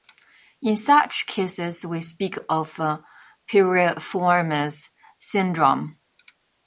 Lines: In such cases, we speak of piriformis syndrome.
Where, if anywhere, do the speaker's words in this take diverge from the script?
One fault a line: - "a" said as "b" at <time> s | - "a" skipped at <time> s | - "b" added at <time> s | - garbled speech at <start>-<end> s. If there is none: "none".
none